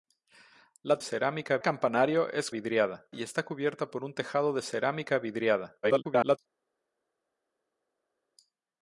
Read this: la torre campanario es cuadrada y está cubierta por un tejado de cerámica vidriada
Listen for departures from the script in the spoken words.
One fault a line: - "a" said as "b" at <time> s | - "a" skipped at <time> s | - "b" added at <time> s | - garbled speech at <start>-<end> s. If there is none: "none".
- "torre" said as "cerámica" at 1.0 s
- "cuadrada" said as "vidriada" at 2.5 s
- garbled speech at 5.8-6.4 s